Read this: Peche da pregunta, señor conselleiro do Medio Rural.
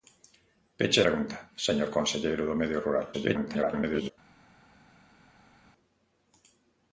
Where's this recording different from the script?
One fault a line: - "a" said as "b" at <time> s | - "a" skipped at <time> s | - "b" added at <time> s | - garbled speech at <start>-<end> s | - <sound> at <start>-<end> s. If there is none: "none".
- "da" skipped at 1.0 s
- garbled speech at 3.1-4.1 s